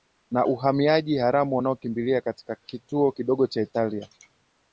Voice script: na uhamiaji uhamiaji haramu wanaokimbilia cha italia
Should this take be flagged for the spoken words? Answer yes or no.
yes